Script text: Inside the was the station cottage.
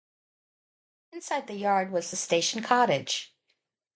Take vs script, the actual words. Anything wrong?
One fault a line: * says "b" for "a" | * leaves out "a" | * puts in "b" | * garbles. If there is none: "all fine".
* puts in "yard"